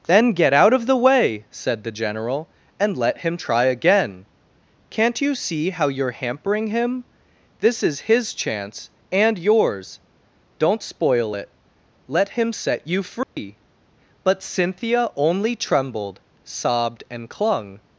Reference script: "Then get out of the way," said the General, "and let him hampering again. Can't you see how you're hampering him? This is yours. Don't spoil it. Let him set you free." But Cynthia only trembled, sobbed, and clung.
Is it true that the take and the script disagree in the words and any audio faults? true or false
true